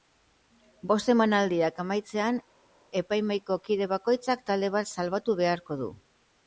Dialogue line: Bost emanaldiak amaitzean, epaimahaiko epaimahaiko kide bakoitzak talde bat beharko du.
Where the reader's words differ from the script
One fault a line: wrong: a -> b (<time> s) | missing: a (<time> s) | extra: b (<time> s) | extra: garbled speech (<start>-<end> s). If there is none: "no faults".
missing: epaimahaiko (3.6 s)
extra: salbatu (4.9 s)